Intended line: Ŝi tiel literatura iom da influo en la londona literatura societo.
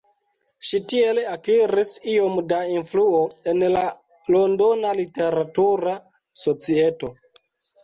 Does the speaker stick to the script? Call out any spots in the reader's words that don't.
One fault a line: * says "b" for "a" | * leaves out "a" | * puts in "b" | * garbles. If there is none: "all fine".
* says "akiris" for "literatura"